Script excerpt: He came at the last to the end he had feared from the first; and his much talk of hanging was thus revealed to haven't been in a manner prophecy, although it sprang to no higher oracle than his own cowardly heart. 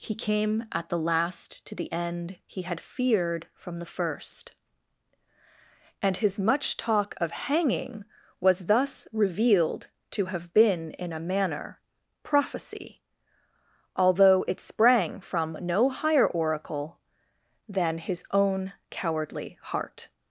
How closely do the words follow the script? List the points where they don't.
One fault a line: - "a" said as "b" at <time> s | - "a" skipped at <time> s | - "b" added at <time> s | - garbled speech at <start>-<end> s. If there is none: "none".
- "haven't" said as "have" at 10.2 s
- "to" said as "from" at 15.2 s